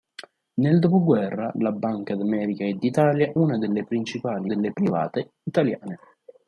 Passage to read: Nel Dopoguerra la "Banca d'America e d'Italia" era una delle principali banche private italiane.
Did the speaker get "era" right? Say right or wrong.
wrong